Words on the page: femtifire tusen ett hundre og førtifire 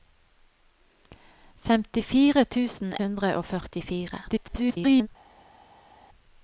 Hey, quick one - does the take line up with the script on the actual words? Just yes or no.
no